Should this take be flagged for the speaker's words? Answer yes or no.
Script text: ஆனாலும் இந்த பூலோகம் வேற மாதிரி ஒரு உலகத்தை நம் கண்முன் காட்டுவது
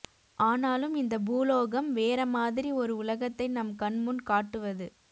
no